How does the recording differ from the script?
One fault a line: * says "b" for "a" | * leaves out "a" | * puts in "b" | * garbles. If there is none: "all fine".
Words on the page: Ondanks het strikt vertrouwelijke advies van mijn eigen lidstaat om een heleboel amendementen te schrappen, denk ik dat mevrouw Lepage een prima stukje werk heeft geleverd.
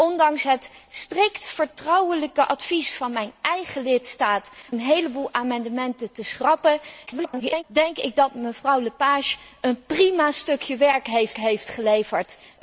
* leaves out "om"
* garbles
* puts in "heeft"